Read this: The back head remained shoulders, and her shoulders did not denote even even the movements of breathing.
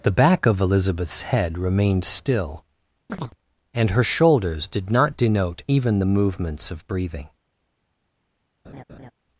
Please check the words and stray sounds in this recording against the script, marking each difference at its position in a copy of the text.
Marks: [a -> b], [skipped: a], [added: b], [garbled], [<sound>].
The back [added: of Elizabeth's] head remained [shoulders, -> still] [chirp] and her shoulders did not denote even [skipped: even] the movements of breathing. [laugh]